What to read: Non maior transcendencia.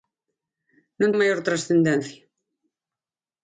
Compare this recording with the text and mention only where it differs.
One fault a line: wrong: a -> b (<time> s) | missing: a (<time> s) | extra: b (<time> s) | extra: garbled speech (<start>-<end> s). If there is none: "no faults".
no faults